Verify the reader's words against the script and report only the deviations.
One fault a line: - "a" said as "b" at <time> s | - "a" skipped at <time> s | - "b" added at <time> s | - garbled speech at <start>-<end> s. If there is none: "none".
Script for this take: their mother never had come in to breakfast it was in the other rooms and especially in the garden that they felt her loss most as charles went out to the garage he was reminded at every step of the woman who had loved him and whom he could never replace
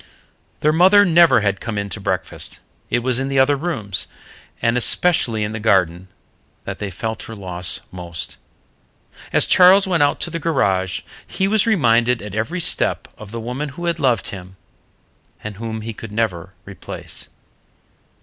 none